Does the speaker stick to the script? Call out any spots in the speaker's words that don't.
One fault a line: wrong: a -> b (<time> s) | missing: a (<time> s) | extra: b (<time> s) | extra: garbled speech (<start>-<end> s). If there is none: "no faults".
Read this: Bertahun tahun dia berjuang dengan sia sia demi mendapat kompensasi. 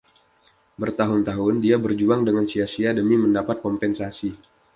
no faults